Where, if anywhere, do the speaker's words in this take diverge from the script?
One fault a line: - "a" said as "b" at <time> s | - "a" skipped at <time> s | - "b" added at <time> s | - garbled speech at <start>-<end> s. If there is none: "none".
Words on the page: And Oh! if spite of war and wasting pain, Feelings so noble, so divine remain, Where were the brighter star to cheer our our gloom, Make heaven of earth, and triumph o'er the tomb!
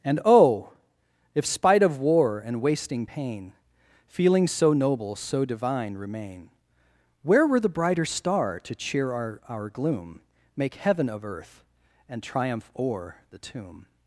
none